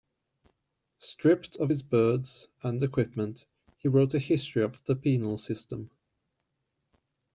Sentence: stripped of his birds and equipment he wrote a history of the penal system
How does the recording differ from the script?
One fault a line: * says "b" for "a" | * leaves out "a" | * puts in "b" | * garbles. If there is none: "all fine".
all fine